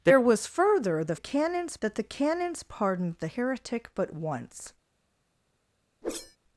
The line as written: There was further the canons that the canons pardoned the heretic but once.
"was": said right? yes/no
yes